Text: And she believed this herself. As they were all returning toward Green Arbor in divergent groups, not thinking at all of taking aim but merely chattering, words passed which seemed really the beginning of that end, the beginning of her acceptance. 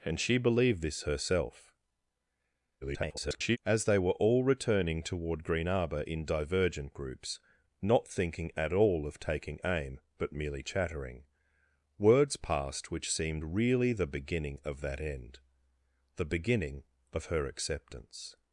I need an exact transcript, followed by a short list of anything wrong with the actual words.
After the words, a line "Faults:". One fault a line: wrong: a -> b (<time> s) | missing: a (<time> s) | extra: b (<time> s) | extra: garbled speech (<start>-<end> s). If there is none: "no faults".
And she believed this herself. [garbled] As they were all returning toward Green Arbor in divergent groups, not thinking at all of taking aim but merely chattering, words passed which seemed really the beginning of that end, the beginning of her acceptance.
Faults:
extra: garbled speech (2.8-3.6 s)